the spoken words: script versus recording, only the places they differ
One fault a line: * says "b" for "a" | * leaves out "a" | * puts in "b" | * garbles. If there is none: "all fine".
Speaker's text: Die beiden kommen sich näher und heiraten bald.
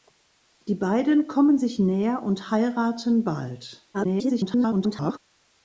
* garbles